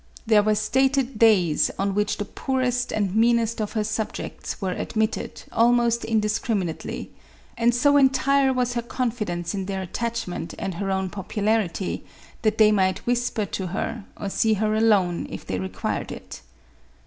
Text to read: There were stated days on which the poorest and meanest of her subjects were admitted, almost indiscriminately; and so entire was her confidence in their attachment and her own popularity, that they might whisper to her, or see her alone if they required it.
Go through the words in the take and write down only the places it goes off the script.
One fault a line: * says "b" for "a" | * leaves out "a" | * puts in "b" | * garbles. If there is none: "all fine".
all fine